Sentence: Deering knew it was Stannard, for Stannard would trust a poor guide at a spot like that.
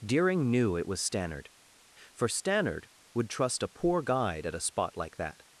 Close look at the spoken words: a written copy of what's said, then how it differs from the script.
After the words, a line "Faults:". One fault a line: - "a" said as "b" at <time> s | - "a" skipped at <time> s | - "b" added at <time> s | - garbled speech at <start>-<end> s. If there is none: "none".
Deering knew it was Stannard, for Stannard would trust a poor guide at a spot like that.
Faults:
none